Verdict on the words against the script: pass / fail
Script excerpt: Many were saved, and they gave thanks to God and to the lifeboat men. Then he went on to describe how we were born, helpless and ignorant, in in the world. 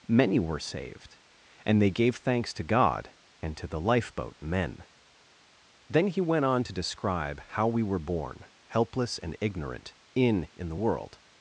pass